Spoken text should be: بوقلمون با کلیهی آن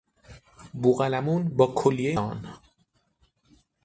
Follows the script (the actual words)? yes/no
yes